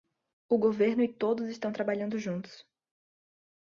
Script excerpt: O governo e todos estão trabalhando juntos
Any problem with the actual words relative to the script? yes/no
no